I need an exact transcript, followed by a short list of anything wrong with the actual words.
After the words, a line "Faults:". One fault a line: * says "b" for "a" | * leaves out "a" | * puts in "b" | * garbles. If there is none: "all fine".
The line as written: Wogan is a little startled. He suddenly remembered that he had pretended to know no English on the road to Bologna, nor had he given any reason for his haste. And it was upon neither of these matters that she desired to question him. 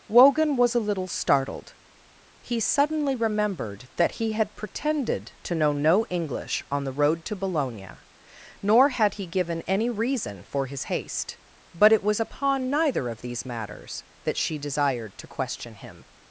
Wogan was a little startled. He suddenly remembered that he had pretended to know no English on the road to Bologna, nor had he given any reason for his haste. But it was upon neither of these matters that she desired to question him.
Faults:
* says "was" for "is"
* says "But" for "And"